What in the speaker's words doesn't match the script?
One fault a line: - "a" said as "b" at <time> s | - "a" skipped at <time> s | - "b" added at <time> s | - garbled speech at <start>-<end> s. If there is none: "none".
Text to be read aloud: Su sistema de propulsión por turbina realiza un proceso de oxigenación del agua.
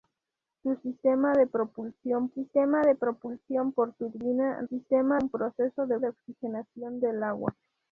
- "sistema de propulsión" added at 2.3 s
- "realiza" said as "sistema" at 4.6 s
- "de" added at 6.0 s